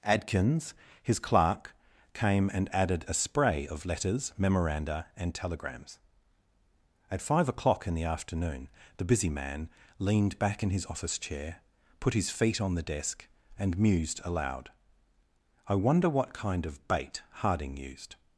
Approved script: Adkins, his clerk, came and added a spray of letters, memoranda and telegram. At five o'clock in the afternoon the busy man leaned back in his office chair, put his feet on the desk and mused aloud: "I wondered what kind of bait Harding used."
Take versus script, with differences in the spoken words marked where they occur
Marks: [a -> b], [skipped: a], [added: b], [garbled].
Adkins, his clerk, came and added a spray of letters, memoranda and [telegram. -> telegrams] At five o'clock in the afternoon the busy man leaned back in his office chair, put his feet on the desk and mused aloud: "I [wondered -> wonder] what kind of bait Harding used."